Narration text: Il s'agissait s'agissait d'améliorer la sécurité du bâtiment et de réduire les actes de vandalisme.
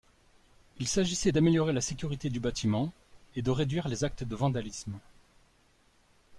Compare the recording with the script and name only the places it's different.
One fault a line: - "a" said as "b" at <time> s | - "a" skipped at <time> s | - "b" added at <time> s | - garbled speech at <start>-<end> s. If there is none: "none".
- "s'agissait" skipped at 1.3 s